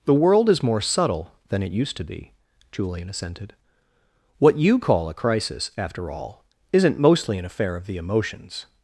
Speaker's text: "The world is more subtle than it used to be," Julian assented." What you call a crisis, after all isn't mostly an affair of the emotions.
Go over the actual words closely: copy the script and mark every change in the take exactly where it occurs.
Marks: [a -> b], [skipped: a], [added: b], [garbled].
"The world is more subtle than it used to be," Julian assented." What you call a crisis, after all isn't mostly an affair of the emotions.